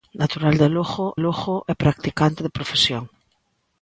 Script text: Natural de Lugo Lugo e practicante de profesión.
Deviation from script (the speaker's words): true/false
false